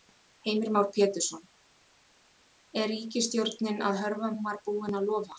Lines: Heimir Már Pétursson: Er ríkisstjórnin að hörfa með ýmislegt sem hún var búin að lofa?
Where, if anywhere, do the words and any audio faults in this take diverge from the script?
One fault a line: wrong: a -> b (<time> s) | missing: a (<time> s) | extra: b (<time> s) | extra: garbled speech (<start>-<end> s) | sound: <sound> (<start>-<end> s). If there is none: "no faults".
missing: með ýmislegt sem (4.3 s)